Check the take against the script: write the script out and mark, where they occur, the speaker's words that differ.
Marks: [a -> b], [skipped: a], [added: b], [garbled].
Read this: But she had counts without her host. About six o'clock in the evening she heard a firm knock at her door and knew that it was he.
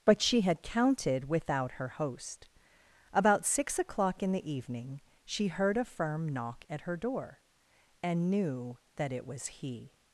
But she had [counts -> counted] without her host. About six o'clock in the evening she heard a firm knock at her door and knew that it was he.